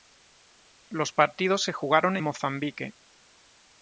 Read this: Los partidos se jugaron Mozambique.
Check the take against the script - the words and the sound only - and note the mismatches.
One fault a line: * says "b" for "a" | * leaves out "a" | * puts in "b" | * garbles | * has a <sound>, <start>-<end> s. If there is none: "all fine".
all fine